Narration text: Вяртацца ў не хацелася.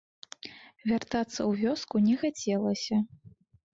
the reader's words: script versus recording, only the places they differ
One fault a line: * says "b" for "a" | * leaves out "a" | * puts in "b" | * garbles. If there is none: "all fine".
* puts in "вёску"